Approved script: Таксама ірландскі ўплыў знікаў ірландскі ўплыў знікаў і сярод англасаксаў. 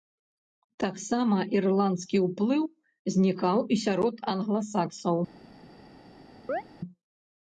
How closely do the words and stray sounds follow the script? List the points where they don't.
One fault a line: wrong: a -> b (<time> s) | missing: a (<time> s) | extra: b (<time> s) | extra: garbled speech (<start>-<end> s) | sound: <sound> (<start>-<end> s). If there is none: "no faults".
missing: ірландскі ўплыў знікаў (3.6 s)
sound: chirp (6.5-6.6 s)